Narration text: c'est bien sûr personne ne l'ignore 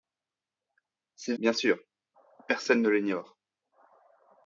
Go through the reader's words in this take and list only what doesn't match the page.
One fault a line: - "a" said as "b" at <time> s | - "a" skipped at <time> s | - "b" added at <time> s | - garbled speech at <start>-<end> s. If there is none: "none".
none